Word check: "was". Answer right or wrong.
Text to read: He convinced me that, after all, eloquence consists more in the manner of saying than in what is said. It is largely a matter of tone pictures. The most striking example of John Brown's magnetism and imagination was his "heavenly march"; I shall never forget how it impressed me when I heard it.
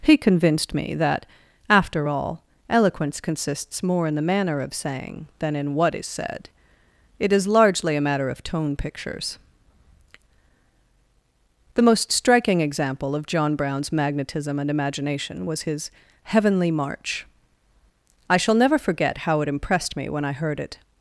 right